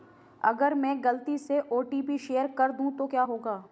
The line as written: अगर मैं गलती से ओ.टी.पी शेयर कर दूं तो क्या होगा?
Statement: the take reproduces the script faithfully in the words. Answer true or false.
true